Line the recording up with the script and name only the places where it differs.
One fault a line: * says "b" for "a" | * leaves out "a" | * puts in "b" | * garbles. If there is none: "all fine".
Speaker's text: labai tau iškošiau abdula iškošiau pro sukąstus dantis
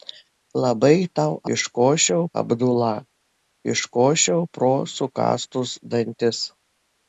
all fine